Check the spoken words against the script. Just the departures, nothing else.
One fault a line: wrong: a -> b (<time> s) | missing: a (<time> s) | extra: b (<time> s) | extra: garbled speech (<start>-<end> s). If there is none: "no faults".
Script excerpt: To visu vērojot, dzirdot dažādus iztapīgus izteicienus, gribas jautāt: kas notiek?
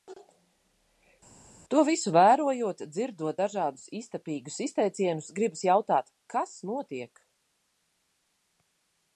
no faults